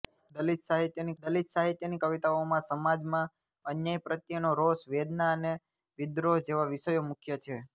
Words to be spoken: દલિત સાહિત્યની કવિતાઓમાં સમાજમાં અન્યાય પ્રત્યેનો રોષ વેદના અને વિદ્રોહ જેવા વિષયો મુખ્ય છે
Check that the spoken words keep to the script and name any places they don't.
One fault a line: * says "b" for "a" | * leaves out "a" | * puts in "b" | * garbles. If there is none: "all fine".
* puts in "દલિત સાહિત્યની"